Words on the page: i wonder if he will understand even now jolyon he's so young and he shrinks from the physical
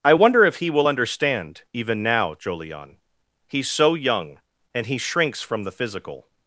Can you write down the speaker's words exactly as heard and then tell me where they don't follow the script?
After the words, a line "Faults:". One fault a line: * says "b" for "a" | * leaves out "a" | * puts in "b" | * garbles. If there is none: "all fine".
i wonder if he will understand even now jolyon he's so young and he shrinks from the physical
Faults:
all fine